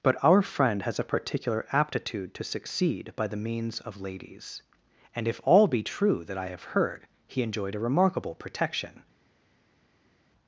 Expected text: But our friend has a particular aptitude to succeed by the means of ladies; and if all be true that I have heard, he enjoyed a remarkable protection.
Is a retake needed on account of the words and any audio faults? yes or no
no